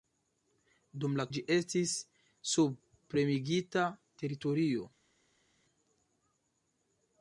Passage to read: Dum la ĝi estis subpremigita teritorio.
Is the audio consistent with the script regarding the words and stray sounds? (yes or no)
yes